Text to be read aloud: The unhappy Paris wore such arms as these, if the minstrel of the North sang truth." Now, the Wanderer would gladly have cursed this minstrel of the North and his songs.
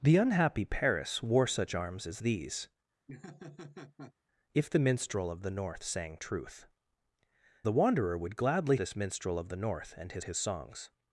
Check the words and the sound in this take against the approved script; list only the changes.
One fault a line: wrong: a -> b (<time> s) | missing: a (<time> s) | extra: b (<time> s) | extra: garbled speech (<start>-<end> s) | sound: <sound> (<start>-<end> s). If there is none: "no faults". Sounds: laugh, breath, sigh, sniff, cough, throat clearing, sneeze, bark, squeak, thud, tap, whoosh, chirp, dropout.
sound: laugh (3.1-4.1 s)
missing: Now (6.7 s)
missing: have cursed (8.8 s)
extra: his (10.2 s)